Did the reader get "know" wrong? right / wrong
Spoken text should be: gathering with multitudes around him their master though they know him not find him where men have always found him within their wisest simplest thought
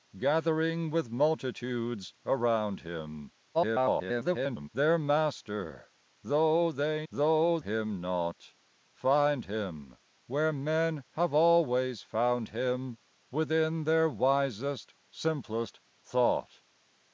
wrong